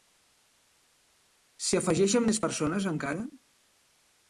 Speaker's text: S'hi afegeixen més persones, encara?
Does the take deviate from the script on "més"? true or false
false